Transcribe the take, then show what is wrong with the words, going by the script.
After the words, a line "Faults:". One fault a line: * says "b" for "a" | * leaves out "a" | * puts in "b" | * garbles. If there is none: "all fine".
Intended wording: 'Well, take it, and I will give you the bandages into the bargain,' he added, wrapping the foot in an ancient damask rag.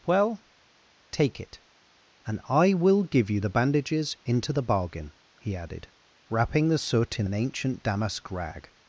'Well, take it, and I will give you the bandages into the bargain,' he added, wrapping the soot in an ancient damask rag.
Faults:
* says "soot" for "foot"